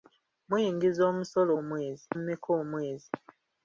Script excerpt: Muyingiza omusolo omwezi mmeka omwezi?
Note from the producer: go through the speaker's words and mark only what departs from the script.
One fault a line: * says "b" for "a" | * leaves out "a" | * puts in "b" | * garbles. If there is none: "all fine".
all fine